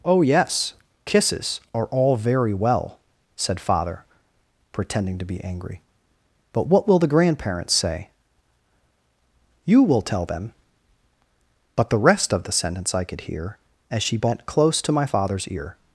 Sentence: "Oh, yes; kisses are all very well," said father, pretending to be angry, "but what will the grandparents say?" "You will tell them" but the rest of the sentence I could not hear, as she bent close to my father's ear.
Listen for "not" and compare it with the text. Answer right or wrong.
wrong